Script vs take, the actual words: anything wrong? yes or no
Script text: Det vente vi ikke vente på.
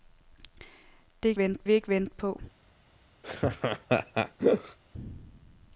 no